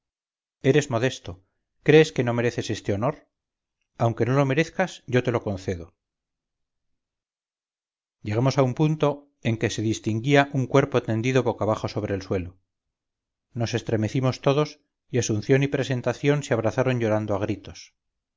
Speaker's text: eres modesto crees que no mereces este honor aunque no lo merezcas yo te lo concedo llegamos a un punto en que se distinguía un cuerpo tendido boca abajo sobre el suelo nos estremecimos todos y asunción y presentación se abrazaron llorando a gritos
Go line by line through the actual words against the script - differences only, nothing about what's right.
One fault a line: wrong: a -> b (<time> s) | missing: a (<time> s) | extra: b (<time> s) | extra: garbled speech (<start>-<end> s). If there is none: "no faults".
no faults